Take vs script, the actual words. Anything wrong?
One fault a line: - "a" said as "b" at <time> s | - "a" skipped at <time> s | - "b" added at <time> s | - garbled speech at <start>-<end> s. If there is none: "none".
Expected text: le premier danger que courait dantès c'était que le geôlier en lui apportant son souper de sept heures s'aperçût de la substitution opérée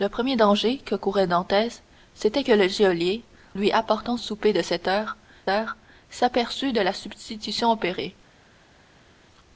- "en" skipped at 3.2 s
- "son" skipped at 4.2 s
- "heures" added at 5.5 s